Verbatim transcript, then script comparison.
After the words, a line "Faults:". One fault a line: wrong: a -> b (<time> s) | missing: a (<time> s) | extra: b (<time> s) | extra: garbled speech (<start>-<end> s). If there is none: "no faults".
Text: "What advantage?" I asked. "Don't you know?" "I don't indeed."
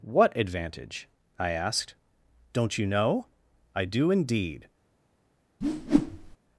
"What advantage?" I asked. "Don't you know?" "I do indeed."
Faults:
wrong: don't -> do (3.8 s)